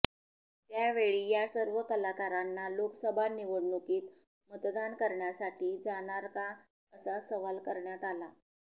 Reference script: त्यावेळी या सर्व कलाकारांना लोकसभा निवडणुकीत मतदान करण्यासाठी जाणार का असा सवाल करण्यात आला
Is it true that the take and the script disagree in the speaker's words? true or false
false